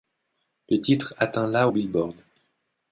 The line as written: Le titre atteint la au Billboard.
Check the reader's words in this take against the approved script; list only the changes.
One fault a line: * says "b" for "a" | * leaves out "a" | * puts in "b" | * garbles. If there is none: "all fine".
all fine